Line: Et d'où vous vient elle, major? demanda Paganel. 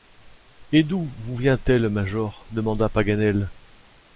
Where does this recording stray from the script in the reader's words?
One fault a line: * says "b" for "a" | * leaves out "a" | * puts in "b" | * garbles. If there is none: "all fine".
all fine